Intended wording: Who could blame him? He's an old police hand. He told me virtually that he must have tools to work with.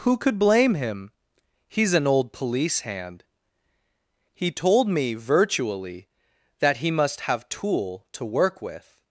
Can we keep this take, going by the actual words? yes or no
no